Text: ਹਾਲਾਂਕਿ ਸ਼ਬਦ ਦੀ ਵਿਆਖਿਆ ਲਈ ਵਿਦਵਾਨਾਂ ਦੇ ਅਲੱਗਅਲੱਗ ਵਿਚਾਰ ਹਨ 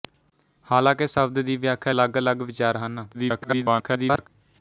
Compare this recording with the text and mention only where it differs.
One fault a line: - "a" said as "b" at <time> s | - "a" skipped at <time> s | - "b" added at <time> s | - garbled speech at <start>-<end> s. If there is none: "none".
- "ਲਈ ਵਿਦਵਾਨਾਂ ਦੇ" skipped at 1.9 s
- garbled speech at 3.1-4.3 s